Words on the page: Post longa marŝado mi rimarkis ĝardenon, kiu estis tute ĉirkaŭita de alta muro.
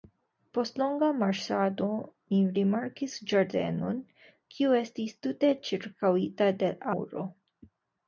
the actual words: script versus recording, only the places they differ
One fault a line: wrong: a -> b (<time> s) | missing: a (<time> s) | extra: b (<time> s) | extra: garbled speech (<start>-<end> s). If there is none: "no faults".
missing: alta (6.7 s)